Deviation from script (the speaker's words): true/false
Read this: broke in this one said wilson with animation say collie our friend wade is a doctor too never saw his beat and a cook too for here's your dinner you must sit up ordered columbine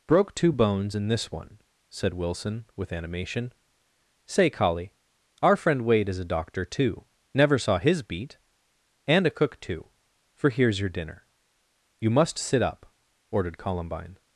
true